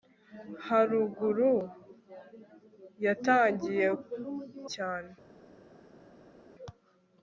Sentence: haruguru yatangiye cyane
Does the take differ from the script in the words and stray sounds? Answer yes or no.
no